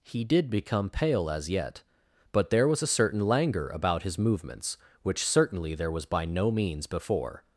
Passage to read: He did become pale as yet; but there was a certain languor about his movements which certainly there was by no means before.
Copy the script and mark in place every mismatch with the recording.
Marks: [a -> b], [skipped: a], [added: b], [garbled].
He did become pale as yet; but there was a certain languor about his movements which certainly there was by no means before.